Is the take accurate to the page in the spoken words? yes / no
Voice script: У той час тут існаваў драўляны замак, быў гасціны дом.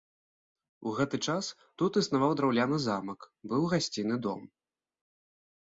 no